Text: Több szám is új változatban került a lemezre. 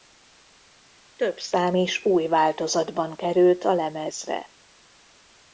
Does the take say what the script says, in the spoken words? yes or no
yes